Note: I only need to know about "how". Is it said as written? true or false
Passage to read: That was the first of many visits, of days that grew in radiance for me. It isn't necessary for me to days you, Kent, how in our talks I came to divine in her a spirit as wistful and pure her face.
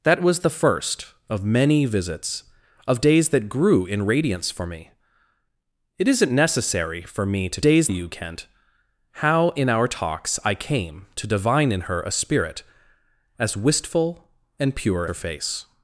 true